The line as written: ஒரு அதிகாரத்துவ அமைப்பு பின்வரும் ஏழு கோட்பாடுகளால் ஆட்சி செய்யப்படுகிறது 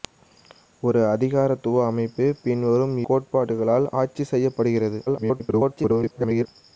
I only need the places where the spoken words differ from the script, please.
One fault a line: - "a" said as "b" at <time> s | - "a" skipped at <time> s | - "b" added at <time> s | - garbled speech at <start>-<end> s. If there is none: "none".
- "ஏழு" skipped at 3.0 s
- garbled speech at 5.1-6.5 s